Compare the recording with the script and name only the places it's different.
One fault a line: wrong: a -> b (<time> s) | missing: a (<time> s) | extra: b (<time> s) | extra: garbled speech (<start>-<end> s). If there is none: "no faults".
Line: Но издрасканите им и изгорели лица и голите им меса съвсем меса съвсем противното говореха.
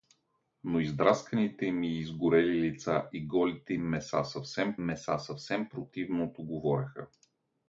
no faults